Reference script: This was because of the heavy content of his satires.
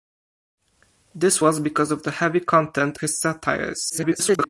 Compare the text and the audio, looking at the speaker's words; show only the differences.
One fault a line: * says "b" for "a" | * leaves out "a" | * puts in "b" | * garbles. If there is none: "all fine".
* leaves out "of"
* garbles